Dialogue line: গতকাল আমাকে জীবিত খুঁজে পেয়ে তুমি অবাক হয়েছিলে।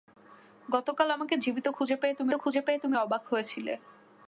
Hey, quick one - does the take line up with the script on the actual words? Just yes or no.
no